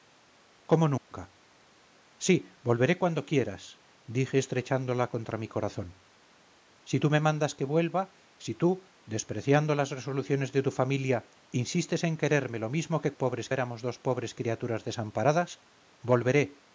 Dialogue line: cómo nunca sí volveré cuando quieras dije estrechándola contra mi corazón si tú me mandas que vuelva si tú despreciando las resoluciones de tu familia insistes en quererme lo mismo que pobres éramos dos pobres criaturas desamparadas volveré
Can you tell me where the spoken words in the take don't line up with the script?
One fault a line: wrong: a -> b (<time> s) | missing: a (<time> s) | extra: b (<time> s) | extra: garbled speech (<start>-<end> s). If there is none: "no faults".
no faults